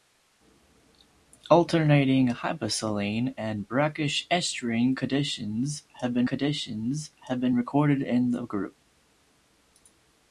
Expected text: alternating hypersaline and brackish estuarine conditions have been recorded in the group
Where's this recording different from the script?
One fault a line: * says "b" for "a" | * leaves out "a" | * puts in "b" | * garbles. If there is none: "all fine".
* puts in "conditions have been"